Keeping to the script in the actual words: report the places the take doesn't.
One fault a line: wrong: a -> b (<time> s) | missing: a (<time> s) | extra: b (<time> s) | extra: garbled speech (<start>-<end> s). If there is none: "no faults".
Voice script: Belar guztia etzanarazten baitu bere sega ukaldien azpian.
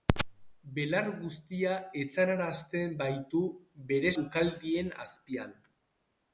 missing: sega (4.1 s)